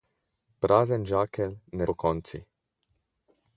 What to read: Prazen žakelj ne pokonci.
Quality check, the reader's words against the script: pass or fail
pass